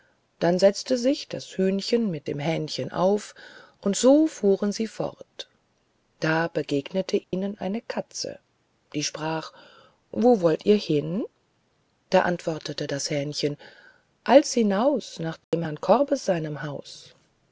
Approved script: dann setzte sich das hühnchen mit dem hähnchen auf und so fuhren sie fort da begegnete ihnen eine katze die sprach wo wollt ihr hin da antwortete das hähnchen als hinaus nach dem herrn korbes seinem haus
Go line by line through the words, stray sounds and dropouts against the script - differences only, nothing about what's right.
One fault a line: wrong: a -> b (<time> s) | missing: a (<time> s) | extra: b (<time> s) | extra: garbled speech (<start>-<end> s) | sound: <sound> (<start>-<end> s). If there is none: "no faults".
sound: dropout (7.2-7.3 s)
sound: dropout (15.4-15.5 s)